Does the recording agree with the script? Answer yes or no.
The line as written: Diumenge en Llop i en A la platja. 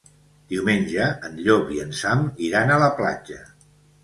no